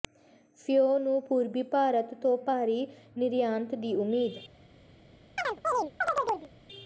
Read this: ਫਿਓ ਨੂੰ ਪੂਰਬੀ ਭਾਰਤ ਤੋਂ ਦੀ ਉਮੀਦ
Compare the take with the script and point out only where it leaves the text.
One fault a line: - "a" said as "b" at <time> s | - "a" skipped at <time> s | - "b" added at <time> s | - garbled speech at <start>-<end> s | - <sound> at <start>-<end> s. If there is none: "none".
- "ਭਾਰੀ ਨਿਰਯਾਤ" added at 2.4 s
- chirp at 5.4-6.5 s